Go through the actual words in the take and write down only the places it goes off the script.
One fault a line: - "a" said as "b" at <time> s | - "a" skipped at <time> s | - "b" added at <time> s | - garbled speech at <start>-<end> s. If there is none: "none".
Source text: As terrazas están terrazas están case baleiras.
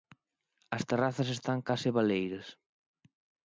- "terrazas están" skipped at 1.6 s